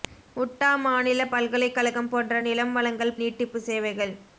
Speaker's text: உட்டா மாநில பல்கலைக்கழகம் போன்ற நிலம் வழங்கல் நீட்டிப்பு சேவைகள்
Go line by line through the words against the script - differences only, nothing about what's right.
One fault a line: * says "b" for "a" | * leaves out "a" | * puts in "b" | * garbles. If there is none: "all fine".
all fine